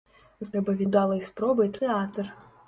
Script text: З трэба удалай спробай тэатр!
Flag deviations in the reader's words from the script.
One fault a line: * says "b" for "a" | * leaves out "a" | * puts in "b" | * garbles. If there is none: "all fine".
all fine